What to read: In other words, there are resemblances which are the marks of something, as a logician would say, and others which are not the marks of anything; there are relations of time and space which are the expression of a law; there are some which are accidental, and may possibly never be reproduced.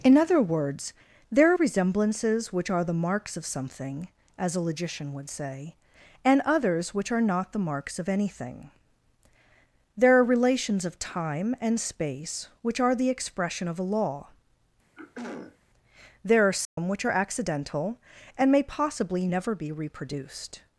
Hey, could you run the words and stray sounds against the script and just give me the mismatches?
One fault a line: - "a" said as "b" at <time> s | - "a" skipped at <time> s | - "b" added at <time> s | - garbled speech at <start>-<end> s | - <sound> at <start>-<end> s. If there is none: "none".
- throat clearing at 14.9-15.6 s
- dropout at 16.6-16.8 s